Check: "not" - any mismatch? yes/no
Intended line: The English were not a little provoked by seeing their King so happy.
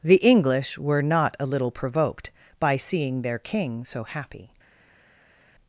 no